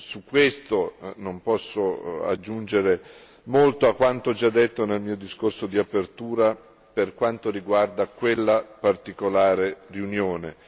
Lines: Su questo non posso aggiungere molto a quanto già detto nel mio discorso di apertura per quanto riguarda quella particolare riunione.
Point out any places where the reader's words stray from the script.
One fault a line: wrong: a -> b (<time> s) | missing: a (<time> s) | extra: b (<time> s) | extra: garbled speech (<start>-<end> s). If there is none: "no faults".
no faults